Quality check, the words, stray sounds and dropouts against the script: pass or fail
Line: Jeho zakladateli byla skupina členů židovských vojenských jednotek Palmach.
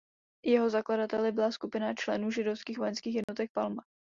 fail